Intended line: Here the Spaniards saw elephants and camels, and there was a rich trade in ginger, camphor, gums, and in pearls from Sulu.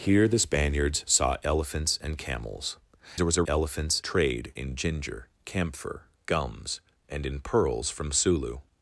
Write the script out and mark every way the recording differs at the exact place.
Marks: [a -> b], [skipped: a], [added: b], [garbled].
Here the Spaniards saw elephants and camels, [skipped: and] there was a [rich -> elephants] trade in ginger, camphor, gums, and in pearls from Sulu.